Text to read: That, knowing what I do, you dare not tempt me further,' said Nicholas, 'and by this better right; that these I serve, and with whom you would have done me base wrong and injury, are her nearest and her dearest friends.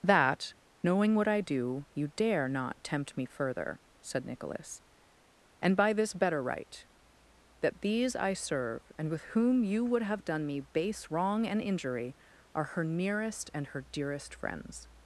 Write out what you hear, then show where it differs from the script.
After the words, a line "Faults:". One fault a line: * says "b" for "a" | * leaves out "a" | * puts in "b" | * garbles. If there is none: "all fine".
That, knowing what I do, you dare not tempt me further,' said Nicholas, 'and by this better right; that these I serve, and with whom you would have done me base wrong and injury, are her nearest and her dearest friends.
Faults:
all fine